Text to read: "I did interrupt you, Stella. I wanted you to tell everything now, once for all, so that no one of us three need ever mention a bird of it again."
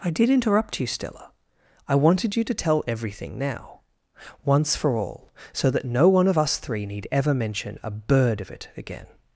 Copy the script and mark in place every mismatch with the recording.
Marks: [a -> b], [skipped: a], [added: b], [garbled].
"I did interrupt you, Stella. I wanted you to tell everything now, once for all, so that no one of us three need ever mention a bird of it again."